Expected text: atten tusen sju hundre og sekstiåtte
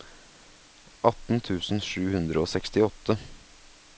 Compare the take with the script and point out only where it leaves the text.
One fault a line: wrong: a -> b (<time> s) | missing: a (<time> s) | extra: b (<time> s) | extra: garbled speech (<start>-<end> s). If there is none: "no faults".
no faults